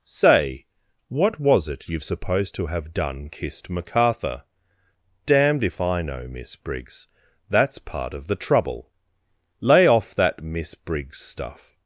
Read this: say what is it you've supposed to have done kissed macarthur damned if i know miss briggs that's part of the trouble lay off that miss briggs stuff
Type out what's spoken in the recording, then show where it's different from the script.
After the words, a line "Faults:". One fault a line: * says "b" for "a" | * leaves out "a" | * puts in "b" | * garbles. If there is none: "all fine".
say what was it you've supposed to have done kissed macarthur damned if i know miss briggs that's part of the trouble lay off that miss briggs stuff
Faults:
* says "was" for "is"